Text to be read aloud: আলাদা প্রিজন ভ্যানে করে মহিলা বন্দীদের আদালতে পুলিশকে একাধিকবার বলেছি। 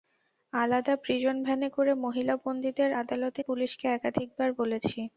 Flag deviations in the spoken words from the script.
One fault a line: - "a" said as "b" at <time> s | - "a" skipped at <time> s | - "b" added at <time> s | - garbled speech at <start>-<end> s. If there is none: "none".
none